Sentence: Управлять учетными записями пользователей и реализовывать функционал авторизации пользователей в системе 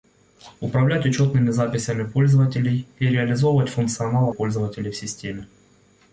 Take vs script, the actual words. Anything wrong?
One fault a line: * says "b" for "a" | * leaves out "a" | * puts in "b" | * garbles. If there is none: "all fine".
* leaves out "авторизации"